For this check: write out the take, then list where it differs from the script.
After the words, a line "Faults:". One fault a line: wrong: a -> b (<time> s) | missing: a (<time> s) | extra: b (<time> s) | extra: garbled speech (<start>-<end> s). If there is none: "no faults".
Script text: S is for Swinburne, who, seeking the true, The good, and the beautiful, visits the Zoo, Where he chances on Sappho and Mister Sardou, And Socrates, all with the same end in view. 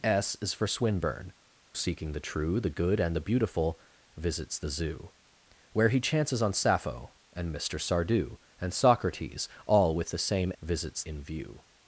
S is for Swinburne, seeking the true, The good, and the beautiful, visits the Zoo, Where he chances on Sappho and Mister Sardou, And Socrates, all with the same visits in view.
Faults:
missing: who (1.3 s)
wrong: end -> visits (10.6 s)